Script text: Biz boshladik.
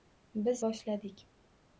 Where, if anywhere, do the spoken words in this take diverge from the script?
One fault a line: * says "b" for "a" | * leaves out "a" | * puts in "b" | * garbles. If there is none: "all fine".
all fine